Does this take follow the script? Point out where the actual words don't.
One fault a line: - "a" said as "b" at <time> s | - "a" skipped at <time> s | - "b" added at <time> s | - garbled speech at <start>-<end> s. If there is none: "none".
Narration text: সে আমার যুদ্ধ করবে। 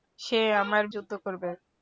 none